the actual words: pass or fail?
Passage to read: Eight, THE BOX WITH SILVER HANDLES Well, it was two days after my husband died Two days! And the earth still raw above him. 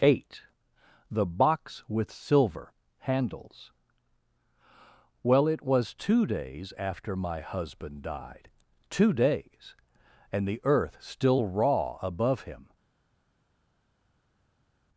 pass